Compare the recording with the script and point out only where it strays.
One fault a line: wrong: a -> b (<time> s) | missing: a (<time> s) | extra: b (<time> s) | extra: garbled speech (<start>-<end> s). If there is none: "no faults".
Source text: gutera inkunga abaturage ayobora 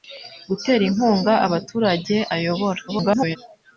extra: garbled speech (2.9-3.4 s)